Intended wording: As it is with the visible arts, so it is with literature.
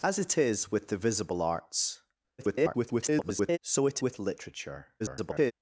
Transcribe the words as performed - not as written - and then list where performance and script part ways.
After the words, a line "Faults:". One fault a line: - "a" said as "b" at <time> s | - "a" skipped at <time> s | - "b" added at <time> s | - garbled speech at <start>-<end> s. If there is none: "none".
As it is with the visible arts, [garbled] so it with literature. [garbled]
Faults:
- garbled speech at 2.4-3.6 s
- "is" skipped at 4.0 s
- garbled speech at 5.0-5.5 s